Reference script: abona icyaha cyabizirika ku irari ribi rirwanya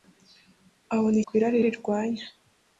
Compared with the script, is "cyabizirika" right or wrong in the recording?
wrong